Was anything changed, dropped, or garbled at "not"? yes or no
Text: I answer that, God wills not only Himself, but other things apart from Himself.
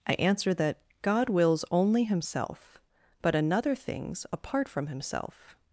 yes